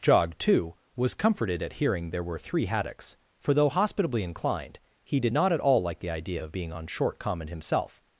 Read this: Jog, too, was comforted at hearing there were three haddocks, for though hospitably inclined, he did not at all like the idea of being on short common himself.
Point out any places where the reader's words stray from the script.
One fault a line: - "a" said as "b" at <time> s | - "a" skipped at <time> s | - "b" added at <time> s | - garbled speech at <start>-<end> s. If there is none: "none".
none